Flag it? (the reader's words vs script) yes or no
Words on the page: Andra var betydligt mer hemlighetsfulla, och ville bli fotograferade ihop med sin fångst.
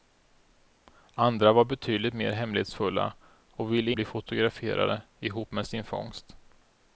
no